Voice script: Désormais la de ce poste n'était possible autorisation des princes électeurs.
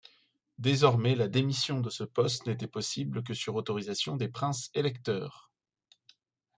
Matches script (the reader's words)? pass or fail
fail